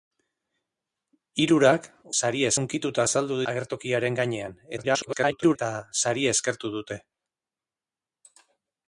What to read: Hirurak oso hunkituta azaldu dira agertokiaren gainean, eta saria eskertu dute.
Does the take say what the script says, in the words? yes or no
no